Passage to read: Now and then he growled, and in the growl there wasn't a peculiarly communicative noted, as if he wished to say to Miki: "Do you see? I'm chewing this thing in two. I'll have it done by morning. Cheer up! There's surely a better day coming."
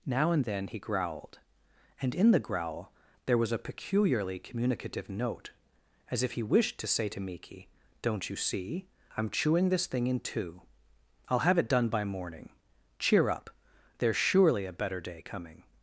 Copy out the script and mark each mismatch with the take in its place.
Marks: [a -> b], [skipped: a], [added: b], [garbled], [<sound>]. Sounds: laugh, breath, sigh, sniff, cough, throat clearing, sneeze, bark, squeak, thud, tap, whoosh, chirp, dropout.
Now and then he growled, and in the growl there [wasn't -> was] a peculiarly communicative [noted, -> note] as if he wished to say to Miki: ["Do -> Don't] you see? I'm chewing this thing in two. I'll have it done by morning. Cheer up! There's surely a better day coming."